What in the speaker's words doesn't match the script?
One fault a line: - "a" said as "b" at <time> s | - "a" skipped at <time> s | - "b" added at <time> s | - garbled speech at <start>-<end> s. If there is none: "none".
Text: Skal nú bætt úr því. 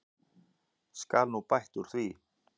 none